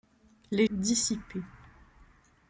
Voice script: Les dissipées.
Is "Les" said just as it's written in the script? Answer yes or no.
yes